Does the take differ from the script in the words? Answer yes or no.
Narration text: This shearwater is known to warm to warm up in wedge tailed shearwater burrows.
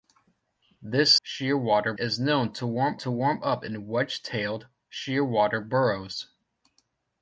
no